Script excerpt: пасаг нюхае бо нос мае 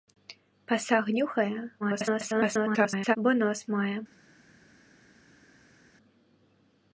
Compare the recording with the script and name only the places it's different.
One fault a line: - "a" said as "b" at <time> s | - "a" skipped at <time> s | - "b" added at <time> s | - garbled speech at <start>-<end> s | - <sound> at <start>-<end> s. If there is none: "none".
- garbled speech at 1.8-3.2 s